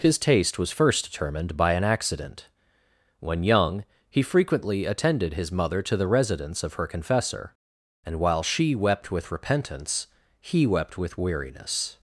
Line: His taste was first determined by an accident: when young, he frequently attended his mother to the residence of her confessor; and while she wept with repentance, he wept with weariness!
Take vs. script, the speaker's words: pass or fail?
pass